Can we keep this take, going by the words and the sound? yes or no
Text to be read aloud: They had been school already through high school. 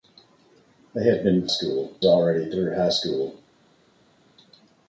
yes